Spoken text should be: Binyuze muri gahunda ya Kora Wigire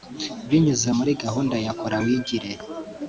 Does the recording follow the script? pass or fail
pass